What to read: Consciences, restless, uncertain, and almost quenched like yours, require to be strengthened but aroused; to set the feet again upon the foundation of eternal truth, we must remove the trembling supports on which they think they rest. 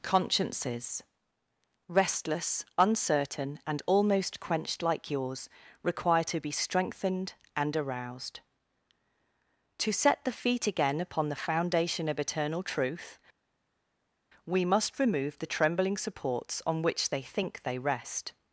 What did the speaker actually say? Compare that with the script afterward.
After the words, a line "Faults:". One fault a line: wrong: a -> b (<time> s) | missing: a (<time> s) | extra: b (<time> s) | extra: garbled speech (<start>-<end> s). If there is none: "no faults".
Consciences, restless, uncertain, and almost quenched like yours, require to be strengthened and aroused; to set the feet again upon the foundation of eternal truth, we must remove the trembling supports on which they think they rest.
Faults:
wrong: but -> and (7.5 s)